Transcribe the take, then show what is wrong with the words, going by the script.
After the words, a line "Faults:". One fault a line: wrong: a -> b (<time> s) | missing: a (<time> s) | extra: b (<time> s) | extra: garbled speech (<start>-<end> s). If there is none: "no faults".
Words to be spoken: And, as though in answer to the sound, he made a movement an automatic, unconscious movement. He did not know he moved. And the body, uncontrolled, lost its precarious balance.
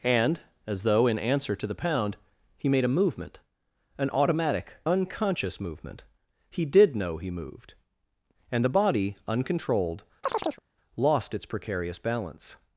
And, as though in answer to the pound, he made a movement an automatic, unconscious movement. He did know he moved. And the body, uncontrolled, lost its precarious balance.
Faults:
wrong: sound -> pound (1.8 s)
missing: not (7.0 s)